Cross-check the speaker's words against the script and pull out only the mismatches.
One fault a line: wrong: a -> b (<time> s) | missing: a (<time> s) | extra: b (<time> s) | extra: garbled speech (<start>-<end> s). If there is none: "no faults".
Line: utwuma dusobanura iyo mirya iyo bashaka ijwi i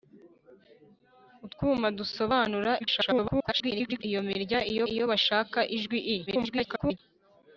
extra: garbled speech (2.8-4.0 s)
extra: iyo (4.9 s)
extra: garbled speech (6.3-7.0 s)